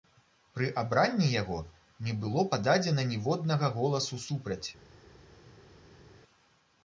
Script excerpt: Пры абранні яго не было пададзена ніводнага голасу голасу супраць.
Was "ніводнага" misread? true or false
false